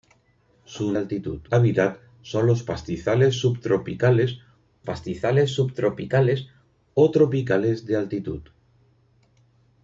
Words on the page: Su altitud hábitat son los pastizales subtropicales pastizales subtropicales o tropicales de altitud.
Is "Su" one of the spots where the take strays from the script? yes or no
no